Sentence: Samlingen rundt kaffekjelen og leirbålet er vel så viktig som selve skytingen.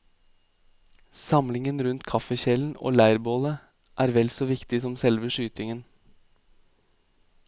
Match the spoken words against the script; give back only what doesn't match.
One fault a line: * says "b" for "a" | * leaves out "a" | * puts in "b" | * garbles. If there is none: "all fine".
all fine